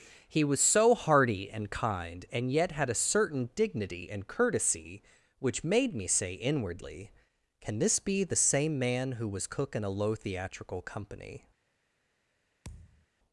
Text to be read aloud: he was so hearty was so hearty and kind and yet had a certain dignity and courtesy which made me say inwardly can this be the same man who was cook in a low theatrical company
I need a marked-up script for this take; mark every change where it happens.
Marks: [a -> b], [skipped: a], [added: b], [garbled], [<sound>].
he was so hearty [skipped: was so hearty] and kind and yet had a certain dignity and courtesy which made me say inwardly can this be the same man who was cook in a low theatrical company [thud]